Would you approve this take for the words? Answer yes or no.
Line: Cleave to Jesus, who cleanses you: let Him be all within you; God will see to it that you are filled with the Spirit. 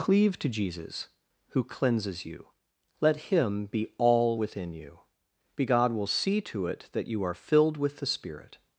no